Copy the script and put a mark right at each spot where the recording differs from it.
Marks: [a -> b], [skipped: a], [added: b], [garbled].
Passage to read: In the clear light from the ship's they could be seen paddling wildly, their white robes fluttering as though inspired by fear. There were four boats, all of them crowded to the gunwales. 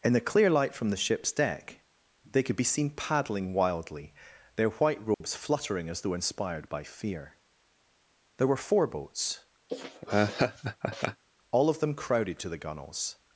In the clear light from the ship's [added: deck] they could be seen paddling wildly, their white robes fluttering as though inspired by fear. There were four boats, all of them crowded to the gunwales.